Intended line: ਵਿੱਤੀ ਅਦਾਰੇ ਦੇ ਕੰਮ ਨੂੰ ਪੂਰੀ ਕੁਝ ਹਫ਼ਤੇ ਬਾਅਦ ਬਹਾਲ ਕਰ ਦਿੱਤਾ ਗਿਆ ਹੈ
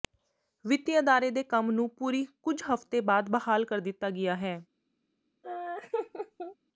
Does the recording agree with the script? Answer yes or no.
yes